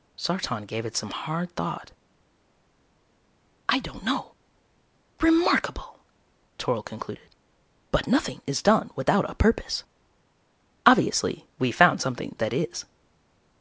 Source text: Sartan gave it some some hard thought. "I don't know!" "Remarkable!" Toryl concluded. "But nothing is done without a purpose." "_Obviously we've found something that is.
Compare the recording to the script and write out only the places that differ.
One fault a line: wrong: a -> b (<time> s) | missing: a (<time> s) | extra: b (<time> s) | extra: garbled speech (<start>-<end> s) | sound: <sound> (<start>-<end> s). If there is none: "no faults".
missing: some (1.1 s)